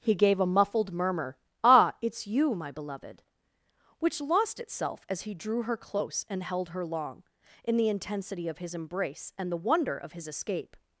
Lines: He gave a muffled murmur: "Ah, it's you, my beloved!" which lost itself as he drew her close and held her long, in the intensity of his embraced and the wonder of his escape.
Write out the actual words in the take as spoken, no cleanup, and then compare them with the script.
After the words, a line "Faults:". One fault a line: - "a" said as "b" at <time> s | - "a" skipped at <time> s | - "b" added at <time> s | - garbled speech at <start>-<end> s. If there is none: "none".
He gave a muffled murmur: "Ah, it's you, my beloved!" which lost itself as he drew her close and held her long, in the intensity of his embrace and the wonder of his escape.
Faults:
- "embraced" said as "embrace" at 8.7 s